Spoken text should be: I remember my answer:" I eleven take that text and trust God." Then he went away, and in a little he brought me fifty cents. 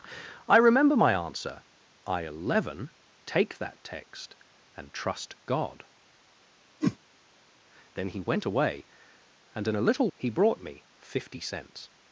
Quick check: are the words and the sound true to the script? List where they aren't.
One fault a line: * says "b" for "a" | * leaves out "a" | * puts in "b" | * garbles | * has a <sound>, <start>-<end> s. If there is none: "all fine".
* has a whoosh, 6.8-7.0 s